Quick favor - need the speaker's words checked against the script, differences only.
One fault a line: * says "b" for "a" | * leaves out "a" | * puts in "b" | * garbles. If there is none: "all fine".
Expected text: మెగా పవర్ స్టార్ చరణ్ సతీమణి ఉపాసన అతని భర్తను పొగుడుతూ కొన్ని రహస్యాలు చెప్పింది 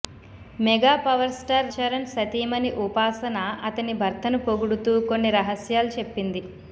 all fine